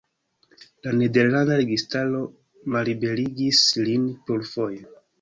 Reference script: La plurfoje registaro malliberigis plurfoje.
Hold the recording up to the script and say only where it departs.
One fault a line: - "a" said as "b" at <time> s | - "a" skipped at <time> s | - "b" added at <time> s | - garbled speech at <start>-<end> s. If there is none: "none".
- "plurfoje" said as "nederlanda" at 1.0 s
- "lin" added at 3.9 s